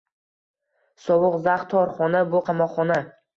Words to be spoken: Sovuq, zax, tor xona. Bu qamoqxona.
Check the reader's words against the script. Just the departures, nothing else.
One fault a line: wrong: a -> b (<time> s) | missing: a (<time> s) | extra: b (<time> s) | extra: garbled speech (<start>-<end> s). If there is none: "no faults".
no faults